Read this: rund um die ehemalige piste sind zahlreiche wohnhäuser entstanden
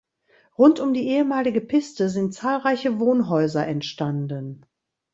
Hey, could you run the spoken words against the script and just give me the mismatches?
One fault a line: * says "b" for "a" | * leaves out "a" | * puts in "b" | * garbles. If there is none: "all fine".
all fine